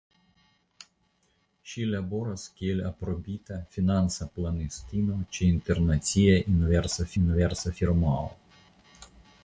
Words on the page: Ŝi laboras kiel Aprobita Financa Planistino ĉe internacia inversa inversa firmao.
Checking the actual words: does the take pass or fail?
pass